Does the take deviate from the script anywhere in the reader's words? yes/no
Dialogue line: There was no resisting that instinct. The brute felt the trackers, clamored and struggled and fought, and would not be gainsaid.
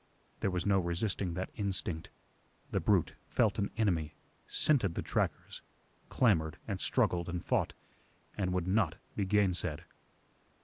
yes